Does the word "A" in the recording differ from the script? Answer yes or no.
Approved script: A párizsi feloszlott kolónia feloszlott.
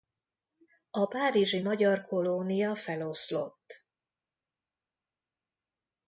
no